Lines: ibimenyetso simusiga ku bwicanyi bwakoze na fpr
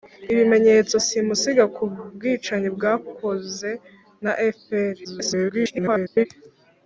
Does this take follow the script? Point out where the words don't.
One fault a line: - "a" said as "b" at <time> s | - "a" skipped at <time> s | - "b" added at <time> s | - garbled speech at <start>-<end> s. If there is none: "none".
- garbled speech at 5.0-6.3 s